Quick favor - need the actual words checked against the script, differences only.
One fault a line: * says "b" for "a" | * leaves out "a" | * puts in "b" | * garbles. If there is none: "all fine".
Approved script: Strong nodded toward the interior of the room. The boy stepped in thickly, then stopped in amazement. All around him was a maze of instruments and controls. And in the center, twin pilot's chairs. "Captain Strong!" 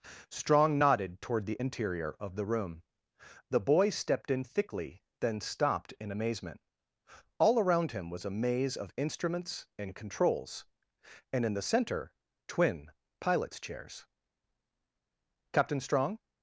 all fine